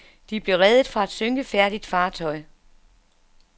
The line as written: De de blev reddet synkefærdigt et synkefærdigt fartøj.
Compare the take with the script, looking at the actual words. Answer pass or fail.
fail